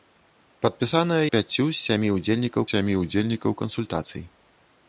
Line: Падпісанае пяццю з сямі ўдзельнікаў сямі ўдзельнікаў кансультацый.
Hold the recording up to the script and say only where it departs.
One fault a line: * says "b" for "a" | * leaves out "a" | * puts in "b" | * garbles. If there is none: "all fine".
all fine